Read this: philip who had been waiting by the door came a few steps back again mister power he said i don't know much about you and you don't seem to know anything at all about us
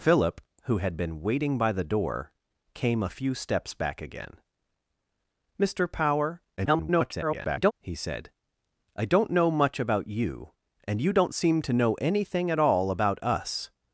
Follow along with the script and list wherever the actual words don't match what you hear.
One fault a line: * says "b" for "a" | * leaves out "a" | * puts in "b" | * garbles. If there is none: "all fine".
* garbles